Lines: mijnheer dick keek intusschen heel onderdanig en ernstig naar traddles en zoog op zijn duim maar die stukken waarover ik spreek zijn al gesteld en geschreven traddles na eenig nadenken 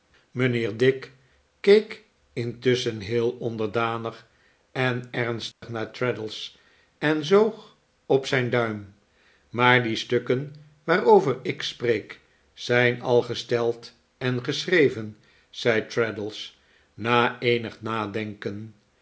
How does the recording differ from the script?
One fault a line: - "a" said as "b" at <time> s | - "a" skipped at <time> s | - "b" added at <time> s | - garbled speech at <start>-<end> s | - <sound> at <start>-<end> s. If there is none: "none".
- dropout at 5.5-5.6 s
- "zei" added at 15.5 s